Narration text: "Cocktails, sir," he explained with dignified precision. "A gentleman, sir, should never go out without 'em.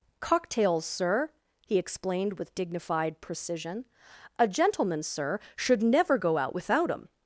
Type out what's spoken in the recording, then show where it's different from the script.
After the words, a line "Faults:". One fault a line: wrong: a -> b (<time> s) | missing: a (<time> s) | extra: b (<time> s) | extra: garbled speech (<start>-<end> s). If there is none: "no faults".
"Cocktails, sir," he explained with dignified precision. "A gentleman, sir, should never go out without 'em.
Faults:
no faults